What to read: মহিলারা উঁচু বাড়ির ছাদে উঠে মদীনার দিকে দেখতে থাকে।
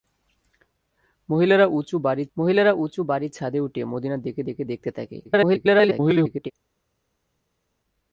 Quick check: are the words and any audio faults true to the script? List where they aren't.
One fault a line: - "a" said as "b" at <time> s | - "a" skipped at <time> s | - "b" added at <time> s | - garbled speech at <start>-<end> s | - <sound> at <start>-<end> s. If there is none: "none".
- "মহিলারা উঁচু বাড়ির" added at 2.4 s
- "দিকে" added at 4.4 s
- garbled speech at 5.2-6.5 s